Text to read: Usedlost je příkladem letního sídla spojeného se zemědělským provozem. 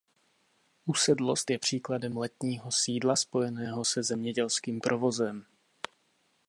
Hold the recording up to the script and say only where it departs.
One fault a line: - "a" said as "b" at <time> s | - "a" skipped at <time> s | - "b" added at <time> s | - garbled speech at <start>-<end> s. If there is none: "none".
none